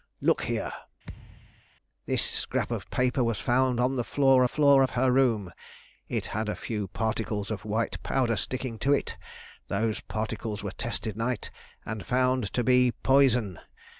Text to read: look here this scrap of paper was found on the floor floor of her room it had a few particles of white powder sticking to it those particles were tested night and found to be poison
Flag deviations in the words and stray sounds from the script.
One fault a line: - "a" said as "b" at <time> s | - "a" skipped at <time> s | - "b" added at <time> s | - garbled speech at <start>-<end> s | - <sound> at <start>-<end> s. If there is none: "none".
- thud at 1.0-1.6 s